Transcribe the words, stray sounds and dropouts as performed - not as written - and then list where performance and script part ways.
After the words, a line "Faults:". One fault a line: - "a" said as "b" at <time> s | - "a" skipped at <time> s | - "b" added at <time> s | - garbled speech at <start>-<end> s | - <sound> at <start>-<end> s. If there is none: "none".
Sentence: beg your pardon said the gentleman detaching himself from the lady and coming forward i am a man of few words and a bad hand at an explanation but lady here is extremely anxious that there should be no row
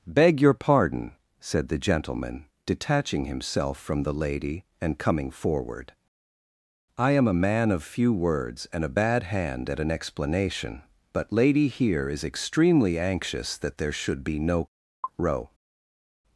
beg your pardon said the gentleman detaching himself from the lady and coming forward i am a man of few words and a bad hand at an explanation but lady here is extremely anxious that there should be no row
Faults:
none